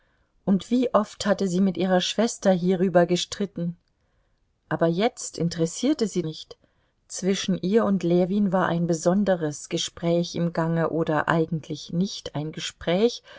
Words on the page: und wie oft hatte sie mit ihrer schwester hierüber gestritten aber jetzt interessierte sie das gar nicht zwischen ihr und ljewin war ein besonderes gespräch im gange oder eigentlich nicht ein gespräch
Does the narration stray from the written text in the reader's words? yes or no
yes